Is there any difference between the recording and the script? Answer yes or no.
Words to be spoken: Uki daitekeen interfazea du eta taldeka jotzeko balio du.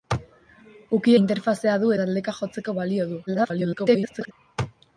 yes